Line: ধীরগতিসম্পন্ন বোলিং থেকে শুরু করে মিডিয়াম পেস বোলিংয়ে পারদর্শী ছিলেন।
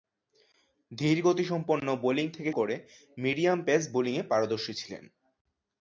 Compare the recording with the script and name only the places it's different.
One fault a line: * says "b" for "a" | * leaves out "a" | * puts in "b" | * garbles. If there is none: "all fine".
* leaves out "শুরু"